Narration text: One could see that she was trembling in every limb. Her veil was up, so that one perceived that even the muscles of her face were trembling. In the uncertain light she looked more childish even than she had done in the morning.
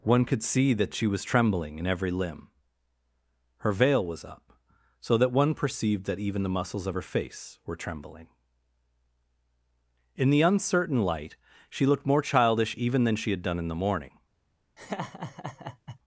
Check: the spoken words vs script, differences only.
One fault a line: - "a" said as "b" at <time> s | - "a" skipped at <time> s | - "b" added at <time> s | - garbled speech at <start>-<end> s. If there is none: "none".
none